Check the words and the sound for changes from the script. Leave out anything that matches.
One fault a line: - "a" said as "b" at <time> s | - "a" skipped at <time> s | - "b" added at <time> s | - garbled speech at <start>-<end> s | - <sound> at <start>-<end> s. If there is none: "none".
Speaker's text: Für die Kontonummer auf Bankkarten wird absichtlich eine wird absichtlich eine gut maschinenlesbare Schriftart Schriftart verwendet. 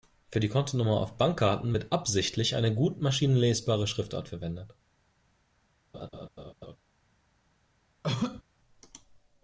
- "wird absichtlich eine" skipped at 2.7 s
- "Schriftart" skipped at 4.3 s
- laugh at 5.9-6.8 s
- cough at 8.0-8.4 s